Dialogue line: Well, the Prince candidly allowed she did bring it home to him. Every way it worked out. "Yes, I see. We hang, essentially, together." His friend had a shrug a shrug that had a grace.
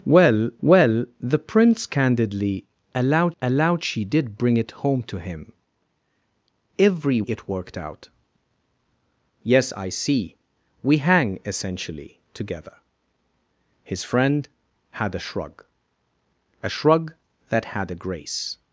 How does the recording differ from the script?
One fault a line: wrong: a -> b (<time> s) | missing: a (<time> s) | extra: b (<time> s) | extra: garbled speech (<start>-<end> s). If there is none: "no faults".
extra: well (0.6 s)
extra: allowed (3.4 s)
missing: way (7.2 s)